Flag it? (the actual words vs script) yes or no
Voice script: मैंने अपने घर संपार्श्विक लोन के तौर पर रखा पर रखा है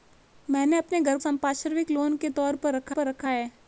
no